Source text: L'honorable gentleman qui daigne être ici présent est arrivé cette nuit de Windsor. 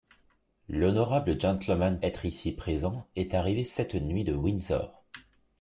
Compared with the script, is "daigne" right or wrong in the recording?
wrong